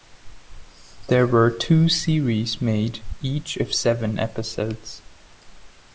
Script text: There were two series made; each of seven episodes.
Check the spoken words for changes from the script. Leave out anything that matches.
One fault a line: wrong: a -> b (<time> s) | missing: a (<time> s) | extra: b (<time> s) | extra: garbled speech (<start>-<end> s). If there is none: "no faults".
no faults